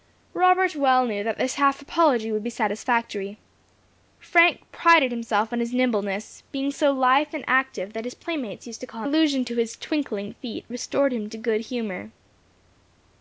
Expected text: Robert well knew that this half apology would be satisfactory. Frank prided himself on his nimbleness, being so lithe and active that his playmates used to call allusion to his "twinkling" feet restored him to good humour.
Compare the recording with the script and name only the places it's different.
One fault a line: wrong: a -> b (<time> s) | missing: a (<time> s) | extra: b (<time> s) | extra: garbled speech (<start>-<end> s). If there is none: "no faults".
no faults